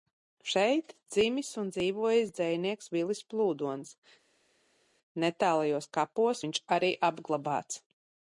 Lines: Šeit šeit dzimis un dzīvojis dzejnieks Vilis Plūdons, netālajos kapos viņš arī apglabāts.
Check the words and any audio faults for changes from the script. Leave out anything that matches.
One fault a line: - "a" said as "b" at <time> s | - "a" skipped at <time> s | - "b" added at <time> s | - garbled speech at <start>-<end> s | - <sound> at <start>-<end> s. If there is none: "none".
- "šeit" skipped at 0.9 s